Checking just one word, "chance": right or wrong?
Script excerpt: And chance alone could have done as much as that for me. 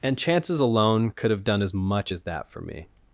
wrong